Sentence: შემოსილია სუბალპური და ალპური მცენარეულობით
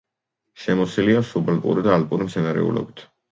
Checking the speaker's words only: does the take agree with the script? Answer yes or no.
yes